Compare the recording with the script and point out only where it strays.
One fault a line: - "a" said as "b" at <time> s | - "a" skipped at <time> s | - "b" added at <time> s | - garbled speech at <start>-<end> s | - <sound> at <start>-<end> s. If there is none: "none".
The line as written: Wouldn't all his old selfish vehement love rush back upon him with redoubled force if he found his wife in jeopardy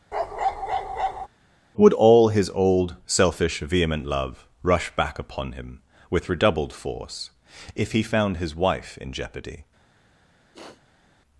- bark at 0.1-1.3 s
- "Wouldn't" said as "Would" at 1.8 s
- sniff at 10.5-11.0 s